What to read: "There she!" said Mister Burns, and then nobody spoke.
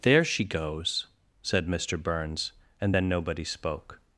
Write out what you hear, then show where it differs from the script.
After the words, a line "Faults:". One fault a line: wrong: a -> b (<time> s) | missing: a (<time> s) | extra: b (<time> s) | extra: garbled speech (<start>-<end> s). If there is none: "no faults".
"There she goes!" said Mister Burns, and then nobody spoke.
Faults:
extra: goes (0.5 s)